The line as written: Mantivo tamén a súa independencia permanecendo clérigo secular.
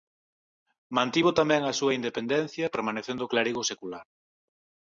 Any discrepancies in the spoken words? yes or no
no